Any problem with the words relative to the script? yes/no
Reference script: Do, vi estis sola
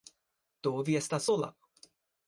yes